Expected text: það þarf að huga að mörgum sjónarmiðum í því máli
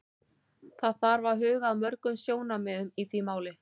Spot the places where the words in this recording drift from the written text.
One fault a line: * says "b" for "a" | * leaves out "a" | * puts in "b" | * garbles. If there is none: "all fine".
all fine